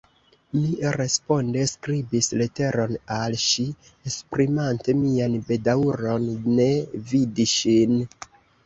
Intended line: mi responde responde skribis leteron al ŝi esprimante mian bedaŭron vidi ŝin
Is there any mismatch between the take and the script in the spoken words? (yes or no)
yes